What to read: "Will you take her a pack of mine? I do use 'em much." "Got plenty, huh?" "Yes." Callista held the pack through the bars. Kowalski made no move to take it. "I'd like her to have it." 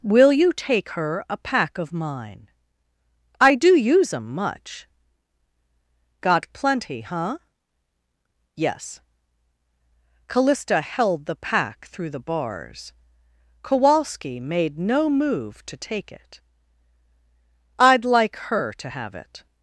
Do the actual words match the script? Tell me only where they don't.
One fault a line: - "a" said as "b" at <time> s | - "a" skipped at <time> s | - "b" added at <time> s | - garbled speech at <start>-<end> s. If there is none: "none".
none